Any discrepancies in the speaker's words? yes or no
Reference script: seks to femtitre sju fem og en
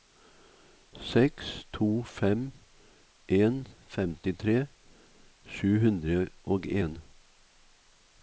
yes